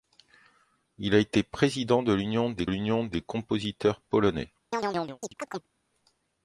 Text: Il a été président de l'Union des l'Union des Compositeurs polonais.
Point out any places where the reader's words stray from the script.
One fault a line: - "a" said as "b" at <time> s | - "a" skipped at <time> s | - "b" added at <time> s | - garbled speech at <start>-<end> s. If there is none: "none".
none